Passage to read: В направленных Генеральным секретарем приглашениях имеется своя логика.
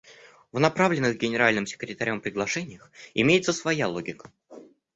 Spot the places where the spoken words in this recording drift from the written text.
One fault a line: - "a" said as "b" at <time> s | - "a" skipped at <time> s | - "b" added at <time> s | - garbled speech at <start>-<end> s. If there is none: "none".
none